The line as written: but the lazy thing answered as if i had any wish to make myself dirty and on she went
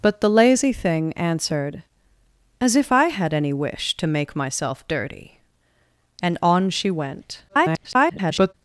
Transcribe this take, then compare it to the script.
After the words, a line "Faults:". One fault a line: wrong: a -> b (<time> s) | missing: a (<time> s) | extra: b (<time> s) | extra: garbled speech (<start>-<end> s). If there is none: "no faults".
but the lazy thing answered as if i had any wish to make myself dirty and on she went [garbled]
Faults:
extra: garbled speech (7.5-8.5 s)